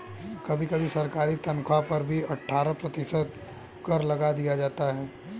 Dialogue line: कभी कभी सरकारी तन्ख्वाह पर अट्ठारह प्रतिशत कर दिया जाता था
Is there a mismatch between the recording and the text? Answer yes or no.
yes